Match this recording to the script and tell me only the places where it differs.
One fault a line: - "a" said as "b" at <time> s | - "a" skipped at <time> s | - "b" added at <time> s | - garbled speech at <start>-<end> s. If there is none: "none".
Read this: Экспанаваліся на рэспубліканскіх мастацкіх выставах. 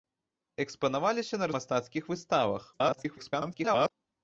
- "рэспубліканскіх" skipped at 1.5 s
- garbled speech at 2.7-3.9 s